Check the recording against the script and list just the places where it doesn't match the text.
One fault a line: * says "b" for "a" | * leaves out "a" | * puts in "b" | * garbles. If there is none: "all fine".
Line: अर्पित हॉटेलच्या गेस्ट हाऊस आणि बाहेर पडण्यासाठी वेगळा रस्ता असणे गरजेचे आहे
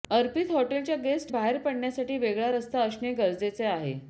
* leaves out "हाऊस आणि"